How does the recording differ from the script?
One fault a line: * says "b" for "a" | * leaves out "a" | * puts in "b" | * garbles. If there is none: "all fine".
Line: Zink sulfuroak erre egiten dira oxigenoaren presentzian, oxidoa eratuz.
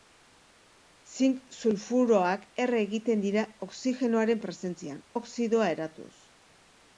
all fine